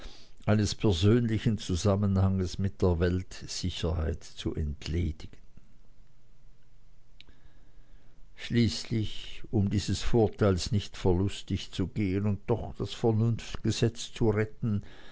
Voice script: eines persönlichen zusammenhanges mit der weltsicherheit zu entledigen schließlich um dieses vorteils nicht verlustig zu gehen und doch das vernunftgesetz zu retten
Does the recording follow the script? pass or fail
pass